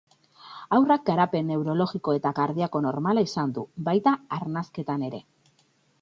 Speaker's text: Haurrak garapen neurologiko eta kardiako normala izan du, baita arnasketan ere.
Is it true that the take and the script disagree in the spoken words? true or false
false